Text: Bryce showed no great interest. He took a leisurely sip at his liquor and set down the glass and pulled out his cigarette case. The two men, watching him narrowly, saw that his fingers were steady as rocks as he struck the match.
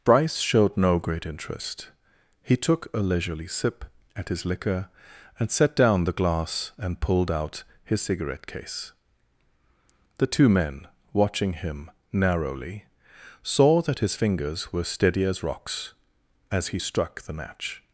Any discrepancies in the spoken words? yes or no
no